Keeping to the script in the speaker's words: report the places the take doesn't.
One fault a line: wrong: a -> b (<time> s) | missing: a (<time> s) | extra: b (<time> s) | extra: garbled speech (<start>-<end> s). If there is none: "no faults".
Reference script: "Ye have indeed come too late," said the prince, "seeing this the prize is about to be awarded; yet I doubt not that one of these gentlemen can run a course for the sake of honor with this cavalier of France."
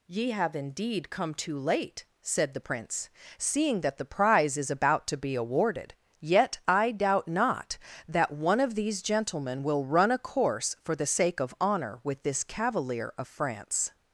wrong: this -> that (3.8 s)
wrong: can -> will (9.6 s)